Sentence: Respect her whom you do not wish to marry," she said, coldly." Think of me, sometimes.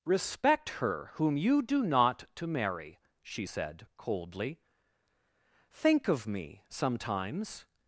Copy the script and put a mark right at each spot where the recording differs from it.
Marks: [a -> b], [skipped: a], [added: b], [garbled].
Respect her whom you do not [skipped: wish] to marry," she said, coldly." Think of me, sometimes.